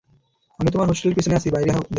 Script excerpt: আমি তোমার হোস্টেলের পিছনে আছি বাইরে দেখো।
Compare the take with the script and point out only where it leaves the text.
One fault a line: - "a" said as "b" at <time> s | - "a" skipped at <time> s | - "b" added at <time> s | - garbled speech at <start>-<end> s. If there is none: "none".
none